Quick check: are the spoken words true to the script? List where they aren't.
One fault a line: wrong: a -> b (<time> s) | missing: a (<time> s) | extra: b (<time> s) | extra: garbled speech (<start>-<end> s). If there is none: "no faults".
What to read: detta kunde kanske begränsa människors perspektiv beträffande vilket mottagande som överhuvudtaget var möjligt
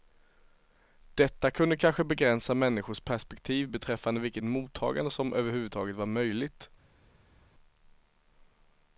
no faults